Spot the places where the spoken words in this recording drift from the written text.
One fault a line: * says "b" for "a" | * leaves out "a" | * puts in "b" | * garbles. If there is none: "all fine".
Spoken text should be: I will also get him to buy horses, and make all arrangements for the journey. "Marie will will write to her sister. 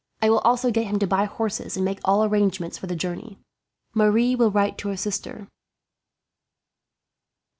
* leaves out "will"